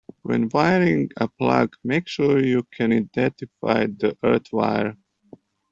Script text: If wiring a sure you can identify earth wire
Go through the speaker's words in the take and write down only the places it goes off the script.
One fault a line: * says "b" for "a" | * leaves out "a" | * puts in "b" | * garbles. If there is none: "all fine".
* says "When" for "If"
* puts in "plug make"
* puts in "the"